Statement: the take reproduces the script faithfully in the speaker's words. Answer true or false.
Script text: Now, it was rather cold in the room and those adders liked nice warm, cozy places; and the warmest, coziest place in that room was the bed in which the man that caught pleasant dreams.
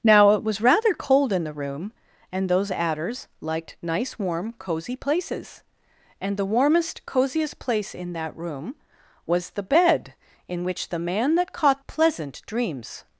true